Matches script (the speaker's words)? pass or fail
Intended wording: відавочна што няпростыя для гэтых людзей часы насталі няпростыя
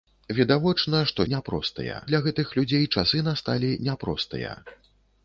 pass